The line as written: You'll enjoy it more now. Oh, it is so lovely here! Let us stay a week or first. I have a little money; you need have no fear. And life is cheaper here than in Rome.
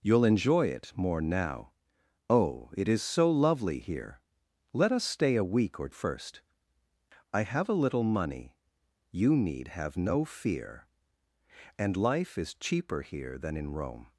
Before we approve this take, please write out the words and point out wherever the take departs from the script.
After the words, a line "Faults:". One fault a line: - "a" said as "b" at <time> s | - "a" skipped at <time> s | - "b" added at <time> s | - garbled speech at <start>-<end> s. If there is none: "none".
You'll enjoy it more now. Oh, it is so lovely here! Let us stay a week or first. I have a little money; you need have no fear. And life is cheaper here than in Rome.
Faults:
none